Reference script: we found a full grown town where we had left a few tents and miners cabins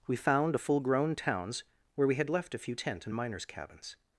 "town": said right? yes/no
no